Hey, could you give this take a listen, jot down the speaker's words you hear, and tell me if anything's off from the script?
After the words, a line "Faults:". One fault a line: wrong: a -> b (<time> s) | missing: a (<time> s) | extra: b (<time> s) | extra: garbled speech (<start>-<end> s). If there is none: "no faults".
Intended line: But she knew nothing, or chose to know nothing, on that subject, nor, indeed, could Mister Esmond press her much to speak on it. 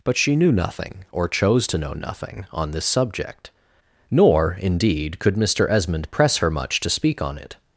But she knew nothing, or chose to know nothing, on this subject, nor, indeed, could Mister Esmond press her much to speak on it.
Faults:
wrong: that -> this (2.7 s)